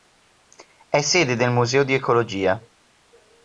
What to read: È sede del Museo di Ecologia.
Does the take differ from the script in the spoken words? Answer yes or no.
no